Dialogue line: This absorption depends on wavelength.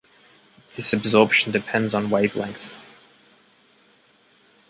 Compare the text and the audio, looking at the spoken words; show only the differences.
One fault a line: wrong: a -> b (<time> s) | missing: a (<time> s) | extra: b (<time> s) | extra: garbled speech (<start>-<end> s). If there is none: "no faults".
no faults